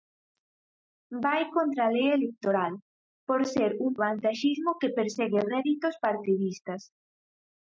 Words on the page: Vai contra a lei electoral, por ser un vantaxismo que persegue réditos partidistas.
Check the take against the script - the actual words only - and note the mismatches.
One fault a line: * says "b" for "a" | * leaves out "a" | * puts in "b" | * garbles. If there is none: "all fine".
all fine